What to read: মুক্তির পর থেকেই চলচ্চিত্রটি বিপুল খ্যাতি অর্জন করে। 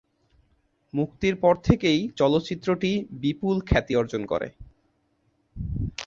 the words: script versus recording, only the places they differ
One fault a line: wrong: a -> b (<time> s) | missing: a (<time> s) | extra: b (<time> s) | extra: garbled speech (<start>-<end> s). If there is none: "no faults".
no faults